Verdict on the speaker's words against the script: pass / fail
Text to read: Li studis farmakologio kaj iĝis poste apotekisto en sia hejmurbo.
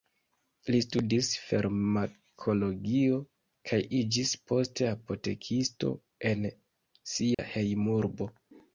pass